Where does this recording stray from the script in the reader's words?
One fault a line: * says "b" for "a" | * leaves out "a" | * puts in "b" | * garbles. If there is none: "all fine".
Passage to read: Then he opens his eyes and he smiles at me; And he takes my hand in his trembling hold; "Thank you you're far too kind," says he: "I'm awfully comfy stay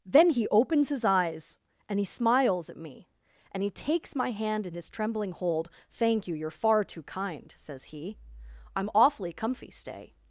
all fine